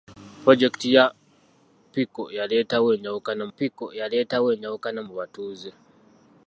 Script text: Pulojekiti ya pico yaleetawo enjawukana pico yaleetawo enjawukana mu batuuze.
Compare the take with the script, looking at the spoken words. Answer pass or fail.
pass